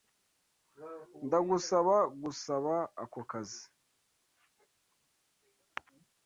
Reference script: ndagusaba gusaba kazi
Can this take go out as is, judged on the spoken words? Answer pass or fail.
fail